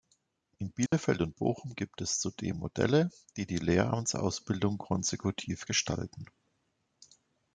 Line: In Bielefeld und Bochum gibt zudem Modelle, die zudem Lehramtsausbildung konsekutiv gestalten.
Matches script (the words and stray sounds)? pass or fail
fail